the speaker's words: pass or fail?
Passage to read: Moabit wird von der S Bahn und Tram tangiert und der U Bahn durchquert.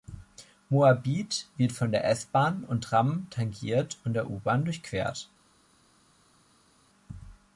pass